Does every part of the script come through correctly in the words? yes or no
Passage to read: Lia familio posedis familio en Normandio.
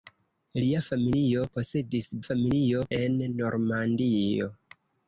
yes